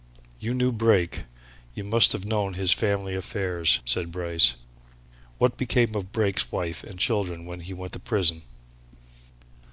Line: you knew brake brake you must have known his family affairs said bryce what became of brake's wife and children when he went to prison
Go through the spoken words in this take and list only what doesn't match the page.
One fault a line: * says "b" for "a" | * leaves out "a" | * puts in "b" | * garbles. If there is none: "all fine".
* leaves out "brake"